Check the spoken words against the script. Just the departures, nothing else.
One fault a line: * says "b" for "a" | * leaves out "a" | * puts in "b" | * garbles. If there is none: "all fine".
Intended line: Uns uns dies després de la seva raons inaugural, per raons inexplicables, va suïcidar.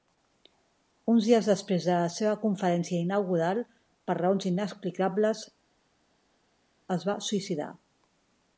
* leaves out "uns"
* says "conferència" for "raons"
* puts in "es"